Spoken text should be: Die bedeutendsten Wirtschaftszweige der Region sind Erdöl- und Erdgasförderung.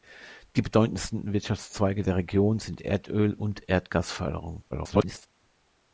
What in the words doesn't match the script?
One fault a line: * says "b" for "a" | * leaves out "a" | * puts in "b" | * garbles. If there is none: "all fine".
* garbles